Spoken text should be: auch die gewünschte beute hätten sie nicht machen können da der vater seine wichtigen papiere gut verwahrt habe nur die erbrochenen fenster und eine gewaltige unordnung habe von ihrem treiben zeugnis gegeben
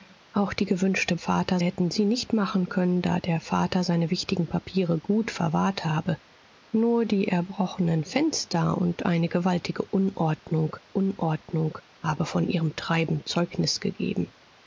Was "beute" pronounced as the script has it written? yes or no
no